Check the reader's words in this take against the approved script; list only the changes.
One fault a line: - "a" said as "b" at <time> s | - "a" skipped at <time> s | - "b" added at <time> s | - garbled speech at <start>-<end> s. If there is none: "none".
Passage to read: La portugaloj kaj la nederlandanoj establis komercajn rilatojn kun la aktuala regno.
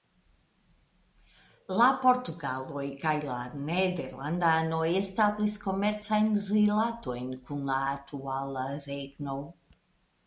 none